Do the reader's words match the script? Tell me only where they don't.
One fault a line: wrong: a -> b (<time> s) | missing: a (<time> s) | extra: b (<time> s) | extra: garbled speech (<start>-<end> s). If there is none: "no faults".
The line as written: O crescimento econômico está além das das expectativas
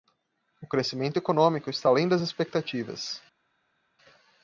missing: das (2.2 s)